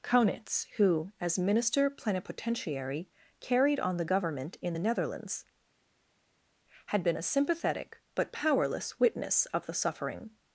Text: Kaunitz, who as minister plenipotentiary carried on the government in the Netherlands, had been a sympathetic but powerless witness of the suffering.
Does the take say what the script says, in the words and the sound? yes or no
yes